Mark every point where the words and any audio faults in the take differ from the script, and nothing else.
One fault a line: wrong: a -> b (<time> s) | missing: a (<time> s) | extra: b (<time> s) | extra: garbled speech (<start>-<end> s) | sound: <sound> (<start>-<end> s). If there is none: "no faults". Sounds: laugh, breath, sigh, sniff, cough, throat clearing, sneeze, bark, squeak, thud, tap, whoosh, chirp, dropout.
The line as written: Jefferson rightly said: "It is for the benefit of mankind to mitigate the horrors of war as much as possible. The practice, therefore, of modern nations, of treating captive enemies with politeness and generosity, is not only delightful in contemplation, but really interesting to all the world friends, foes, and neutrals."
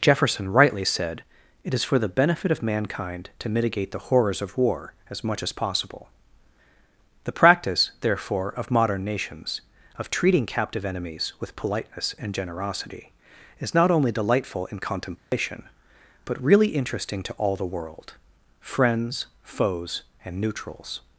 sound: dropout (15.2-15.3 s)